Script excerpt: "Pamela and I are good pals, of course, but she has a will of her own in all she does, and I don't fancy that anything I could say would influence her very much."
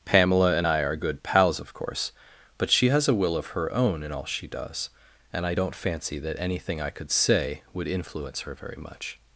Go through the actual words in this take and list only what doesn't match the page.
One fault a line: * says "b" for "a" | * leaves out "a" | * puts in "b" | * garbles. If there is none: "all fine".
all fine